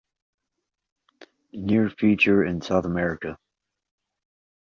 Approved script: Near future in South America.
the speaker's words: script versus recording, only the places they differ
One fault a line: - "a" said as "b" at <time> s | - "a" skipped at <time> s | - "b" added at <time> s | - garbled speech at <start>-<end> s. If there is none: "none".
none